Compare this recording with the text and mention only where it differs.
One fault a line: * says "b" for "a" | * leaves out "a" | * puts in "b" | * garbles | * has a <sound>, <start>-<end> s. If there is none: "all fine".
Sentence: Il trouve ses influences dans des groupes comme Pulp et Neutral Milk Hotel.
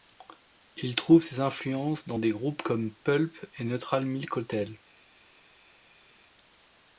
all fine